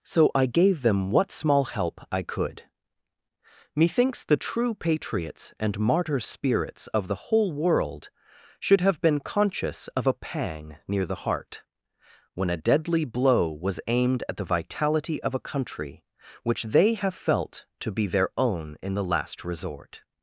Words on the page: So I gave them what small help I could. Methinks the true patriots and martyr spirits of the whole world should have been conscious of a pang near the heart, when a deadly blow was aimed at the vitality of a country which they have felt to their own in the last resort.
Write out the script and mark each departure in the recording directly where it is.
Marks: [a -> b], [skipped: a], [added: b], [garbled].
So I gave them what small help I could. Methinks the true patriots and martyr spirits of the whole world should have been conscious of a pang near the heart, when a deadly blow was aimed at the vitality of a country which they have felt to [added: be] their own in the last resort.